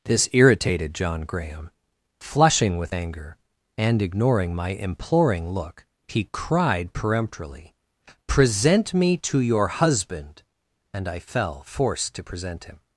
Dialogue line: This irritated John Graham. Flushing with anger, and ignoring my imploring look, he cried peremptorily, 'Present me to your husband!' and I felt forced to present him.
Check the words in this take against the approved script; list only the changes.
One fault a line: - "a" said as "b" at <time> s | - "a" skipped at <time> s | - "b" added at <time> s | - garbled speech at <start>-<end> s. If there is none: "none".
- "felt" said as "fell" at 11.2 s